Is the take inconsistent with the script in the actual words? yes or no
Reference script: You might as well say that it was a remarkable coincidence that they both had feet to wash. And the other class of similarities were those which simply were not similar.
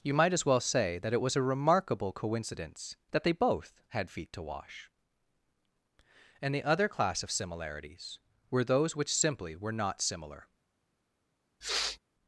no